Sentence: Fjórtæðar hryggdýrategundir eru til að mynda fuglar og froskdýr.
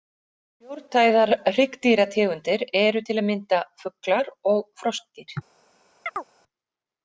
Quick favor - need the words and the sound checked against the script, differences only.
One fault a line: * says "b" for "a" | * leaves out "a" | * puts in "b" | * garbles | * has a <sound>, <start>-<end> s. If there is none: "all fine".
* has a chirp, 6.1-6.3 s